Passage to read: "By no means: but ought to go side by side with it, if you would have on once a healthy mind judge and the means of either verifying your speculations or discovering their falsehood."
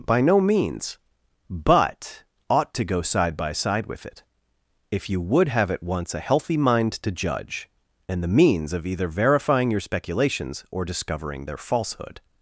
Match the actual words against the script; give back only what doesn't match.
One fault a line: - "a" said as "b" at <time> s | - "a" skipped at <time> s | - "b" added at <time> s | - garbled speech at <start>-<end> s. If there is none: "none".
- "on" said as "at" at 5.7 s
- "to" added at 6.9 s